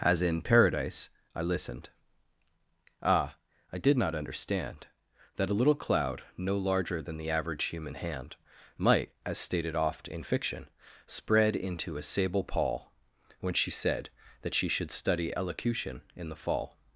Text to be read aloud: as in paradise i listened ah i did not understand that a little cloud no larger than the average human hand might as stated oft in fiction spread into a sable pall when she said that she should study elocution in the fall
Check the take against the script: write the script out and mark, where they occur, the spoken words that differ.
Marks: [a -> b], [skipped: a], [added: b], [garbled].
as in paradise i listened ah i did not understand that a little cloud no larger than the average human hand might as stated oft in fiction spread into a sable pall when she said that she should study elocution in the fall